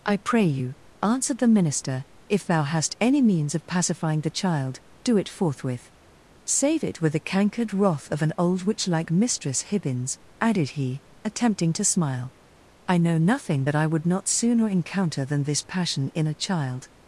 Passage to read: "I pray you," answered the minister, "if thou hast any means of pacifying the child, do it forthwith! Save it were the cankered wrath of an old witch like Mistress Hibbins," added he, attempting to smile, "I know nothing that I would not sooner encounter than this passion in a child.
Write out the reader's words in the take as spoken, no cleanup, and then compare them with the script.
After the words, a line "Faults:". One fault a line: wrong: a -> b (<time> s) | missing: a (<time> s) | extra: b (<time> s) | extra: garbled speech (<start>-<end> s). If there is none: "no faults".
"I pray you," answered the minister, "if thou hast any means of pacifying the child, do it forthwith! Save it with the cankered wrath of an old witch like Mistress Hibbins," added he, attempting to smile, "I know nothing that I would not sooner encounter than this passion in a child.
Faults:
wrong: were -> with (7.0 s)